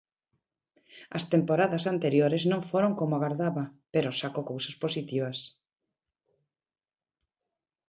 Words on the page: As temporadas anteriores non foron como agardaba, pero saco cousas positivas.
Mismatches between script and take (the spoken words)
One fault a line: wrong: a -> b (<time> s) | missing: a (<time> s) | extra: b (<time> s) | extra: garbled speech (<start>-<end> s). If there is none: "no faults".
no faults